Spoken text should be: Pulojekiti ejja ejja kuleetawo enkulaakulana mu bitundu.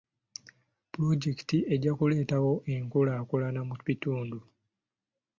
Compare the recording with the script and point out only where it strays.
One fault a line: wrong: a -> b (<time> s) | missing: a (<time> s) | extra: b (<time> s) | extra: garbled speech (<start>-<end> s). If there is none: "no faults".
missing: ejja (1.9 s)